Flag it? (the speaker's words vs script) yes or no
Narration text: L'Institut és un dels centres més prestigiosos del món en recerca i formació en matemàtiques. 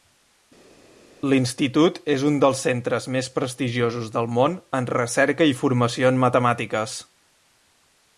no